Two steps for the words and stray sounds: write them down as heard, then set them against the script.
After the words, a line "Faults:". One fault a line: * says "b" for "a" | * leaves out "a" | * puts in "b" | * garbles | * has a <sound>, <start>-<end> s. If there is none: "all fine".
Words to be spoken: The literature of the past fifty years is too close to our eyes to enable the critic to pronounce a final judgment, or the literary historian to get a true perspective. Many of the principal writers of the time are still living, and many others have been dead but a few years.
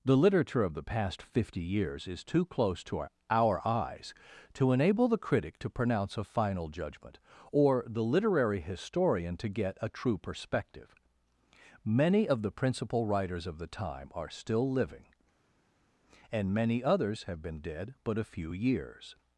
The literature of the past fifty years is too close to our our eyes to enable the critic to pronounce a final judgment, or the literary historian to get a true perspective. Many of the principal writers of the time are still living, and many others have been dead but a few years.
Faults:
* puts in "our"